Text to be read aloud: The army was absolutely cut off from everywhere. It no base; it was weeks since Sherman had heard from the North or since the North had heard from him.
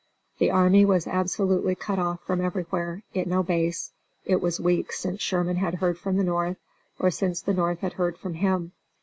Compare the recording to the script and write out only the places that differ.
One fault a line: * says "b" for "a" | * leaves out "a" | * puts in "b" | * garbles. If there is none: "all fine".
all fine